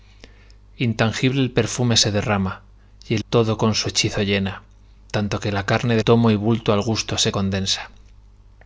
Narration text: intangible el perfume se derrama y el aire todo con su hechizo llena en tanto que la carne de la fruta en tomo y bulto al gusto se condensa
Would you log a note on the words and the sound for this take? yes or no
yes